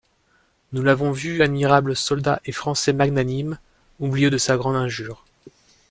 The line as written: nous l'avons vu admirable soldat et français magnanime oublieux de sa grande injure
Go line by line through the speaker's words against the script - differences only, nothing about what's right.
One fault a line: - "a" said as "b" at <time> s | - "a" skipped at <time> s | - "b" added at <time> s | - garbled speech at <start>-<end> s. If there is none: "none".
none